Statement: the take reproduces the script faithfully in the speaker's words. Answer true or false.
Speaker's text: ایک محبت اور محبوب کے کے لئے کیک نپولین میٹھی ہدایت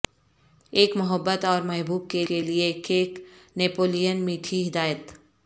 true